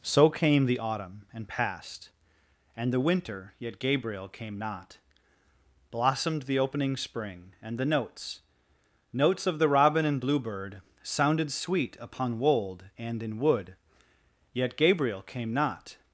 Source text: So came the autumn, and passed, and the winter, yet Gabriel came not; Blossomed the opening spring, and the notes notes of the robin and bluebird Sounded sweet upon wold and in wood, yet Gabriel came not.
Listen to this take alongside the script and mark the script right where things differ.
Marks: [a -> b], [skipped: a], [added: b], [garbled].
So came the autumn, and passed, and the winter, yet Gabriel came not; Blossomed the opening spring, and the notes notes of the robin and bluebird Sounded sweet upon wold and in wood, yet Gabriel came not.